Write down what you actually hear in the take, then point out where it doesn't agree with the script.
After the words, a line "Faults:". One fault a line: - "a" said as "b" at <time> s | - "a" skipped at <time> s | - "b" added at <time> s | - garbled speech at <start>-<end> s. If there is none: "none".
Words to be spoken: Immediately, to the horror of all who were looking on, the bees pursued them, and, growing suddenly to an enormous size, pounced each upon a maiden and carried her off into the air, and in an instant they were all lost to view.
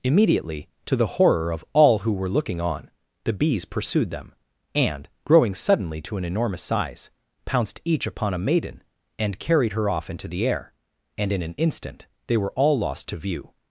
Immediately, to the horror of all who were looking on, the bees pursued them, and, growing suddenly to an enormous size, pounced each upon a maiden and carried her off into the air, and in an instant they were all lost to view.
Faults:
none